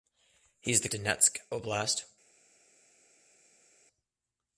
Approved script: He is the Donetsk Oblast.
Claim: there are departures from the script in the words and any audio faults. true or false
false